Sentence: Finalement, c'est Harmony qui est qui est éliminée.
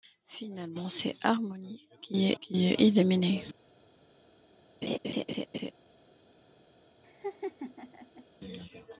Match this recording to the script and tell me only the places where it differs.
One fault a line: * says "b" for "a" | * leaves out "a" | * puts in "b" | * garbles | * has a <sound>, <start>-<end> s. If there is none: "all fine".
* has a laugh, 4.8-5.7 s
* has a laugh, 7.0-8.3 s